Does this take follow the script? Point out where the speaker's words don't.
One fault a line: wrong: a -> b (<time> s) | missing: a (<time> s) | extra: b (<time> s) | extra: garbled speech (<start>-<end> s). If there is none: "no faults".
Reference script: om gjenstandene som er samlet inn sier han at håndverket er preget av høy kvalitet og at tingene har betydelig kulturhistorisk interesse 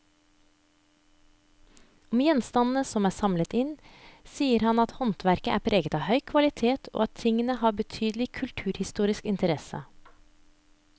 no faults